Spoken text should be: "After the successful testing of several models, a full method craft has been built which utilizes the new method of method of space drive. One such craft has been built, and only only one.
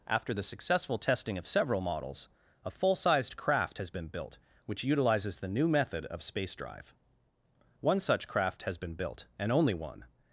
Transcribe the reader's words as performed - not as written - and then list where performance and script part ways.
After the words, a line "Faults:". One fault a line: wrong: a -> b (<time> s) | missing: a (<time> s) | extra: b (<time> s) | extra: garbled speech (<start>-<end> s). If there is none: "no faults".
"After the successful testing of several models, a full sized craft has been built which utilizes the new method of space drive. One such craft has been built, and only one.
Faults:
wrong: method -> sized (3.0 s)
missing: method of (6.2 s)
missing: only (9.7 s)